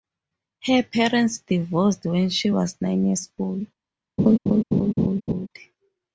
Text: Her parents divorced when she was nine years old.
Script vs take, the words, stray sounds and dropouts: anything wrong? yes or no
yes